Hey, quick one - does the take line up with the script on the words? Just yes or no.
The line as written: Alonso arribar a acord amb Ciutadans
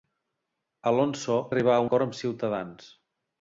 yes